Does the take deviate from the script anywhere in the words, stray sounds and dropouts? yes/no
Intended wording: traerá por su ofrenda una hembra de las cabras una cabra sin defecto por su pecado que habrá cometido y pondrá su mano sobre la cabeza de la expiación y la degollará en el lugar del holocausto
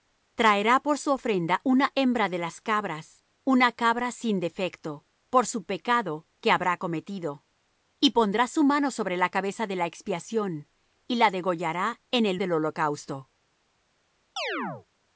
yes